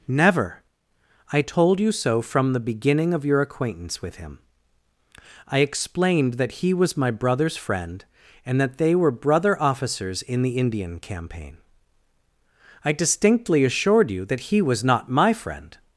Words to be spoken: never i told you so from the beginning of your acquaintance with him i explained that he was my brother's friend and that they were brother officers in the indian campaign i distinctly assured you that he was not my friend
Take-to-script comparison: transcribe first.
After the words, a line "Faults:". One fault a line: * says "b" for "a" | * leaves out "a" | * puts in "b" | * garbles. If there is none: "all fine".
never i told you so from the beginning of your acquaintance with him i explained that he was my brother's friend and that they were brother officers in the indian campaign i distinctly assured you that he was not my friend
Faults:
all fine